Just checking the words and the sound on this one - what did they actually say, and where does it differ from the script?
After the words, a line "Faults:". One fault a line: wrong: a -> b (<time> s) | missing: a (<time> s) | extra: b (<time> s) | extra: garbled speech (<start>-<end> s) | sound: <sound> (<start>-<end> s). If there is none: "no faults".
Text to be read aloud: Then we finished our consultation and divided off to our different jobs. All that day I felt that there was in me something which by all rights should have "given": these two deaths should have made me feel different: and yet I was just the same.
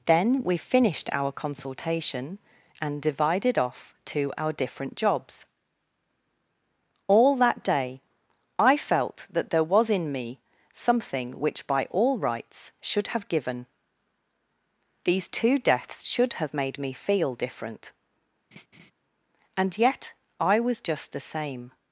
Then we finished our consultation and divided off to our different jobs. All that day I felt that there was in me something which by all rights should have "given": these two deaths should have made me feel different: and yet I was just the same.
Faults:
sound: laugh (18.5-18.9 s)